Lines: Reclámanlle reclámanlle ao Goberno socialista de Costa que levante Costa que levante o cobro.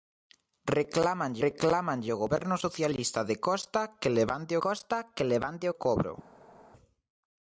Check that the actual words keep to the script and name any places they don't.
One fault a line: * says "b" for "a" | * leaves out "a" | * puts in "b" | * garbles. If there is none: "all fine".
all fine